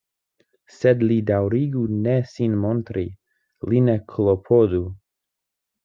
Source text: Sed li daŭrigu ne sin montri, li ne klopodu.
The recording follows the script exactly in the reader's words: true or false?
true